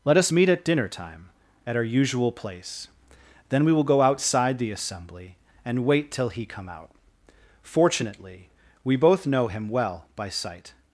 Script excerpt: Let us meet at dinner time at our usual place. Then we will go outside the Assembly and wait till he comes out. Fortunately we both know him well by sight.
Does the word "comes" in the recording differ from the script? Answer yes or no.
yes